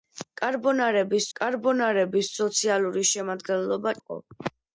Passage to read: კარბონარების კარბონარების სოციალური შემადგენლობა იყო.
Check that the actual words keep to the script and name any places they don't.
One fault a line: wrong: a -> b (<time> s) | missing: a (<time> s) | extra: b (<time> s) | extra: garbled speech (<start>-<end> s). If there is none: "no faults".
no faults